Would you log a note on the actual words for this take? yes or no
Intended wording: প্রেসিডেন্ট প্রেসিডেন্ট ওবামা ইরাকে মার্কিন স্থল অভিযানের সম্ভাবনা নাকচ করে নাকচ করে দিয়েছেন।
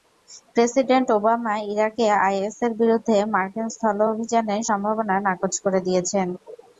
yes